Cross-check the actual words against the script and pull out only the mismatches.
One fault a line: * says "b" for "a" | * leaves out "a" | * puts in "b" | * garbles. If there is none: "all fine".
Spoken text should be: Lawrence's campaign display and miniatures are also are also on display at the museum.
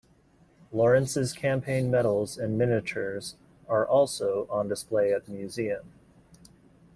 * says "medals" for "display"
* leaves out "are also"